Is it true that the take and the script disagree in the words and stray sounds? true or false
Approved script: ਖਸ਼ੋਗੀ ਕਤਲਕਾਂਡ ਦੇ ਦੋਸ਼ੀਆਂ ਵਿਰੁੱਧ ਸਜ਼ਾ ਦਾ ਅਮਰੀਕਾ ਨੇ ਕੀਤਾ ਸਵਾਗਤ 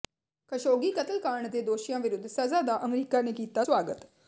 false